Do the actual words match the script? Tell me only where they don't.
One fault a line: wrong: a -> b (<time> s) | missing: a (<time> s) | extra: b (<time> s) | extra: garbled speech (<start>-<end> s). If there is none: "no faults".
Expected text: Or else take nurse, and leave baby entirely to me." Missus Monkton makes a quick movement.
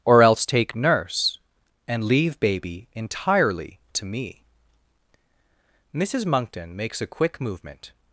no faults